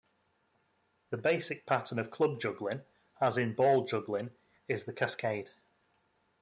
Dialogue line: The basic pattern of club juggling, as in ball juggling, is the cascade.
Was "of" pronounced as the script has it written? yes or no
yes